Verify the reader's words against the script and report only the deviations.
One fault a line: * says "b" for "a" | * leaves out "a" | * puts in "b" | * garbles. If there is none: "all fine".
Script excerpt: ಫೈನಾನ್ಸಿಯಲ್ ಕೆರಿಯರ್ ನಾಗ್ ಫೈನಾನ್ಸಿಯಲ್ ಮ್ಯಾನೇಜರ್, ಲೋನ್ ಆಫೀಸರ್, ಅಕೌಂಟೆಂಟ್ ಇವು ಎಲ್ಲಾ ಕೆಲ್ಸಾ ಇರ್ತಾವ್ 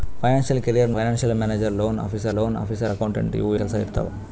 * leaves out "ನಾಗ್"
* puts in "ಲೋನ್ ಆಫೀಸರ್"
* leaves out "ಎಲ್ಲಾ"